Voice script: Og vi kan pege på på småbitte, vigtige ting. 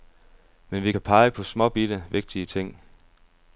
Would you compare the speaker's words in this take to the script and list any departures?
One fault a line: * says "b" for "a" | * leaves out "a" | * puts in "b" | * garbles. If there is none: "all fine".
* says "Men" for "Og"
* leaves out "på"